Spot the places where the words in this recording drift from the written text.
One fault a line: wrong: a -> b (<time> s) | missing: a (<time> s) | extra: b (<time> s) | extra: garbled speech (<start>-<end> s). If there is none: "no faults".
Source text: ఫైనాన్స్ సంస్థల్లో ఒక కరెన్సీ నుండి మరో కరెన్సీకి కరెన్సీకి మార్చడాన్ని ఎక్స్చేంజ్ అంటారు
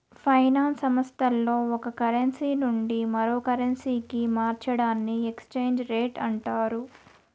missing: కరెన్సీకి (4.2 s)
extra: రేట్ (5.9 s)